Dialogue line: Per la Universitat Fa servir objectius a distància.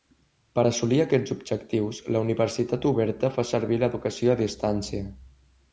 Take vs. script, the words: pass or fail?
fail